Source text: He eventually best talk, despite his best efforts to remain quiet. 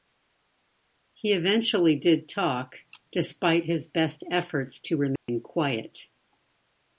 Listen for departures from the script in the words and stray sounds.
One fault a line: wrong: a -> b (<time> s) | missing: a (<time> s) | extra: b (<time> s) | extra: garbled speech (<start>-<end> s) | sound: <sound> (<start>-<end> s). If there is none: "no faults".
wrong: best -> did (1.9 s)
sound: dropout (5.2-5.3 s)